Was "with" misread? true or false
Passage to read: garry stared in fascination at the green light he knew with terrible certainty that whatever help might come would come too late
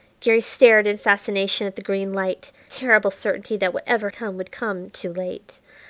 true